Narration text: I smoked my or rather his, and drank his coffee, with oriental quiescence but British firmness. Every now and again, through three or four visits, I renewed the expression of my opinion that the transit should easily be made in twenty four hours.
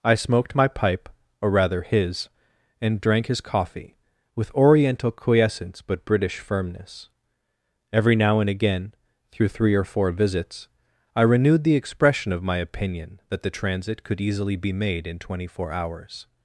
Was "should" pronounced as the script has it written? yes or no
no